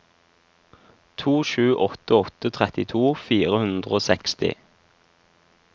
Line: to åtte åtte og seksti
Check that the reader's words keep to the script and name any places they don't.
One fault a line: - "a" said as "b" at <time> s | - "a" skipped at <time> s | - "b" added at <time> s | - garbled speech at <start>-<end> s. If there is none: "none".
- "sju" added at 1.5 s
- "trettito fire hundre" added at 2.6 s